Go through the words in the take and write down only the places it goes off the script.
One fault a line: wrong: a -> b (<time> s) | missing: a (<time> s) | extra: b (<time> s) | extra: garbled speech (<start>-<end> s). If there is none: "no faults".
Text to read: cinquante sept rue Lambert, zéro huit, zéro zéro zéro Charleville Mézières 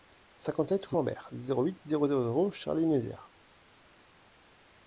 no faults